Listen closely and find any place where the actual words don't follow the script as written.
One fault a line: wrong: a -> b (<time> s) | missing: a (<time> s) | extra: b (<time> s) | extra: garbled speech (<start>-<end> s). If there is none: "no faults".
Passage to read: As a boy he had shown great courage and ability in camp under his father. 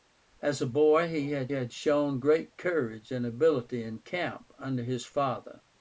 extra: had (1.5 s)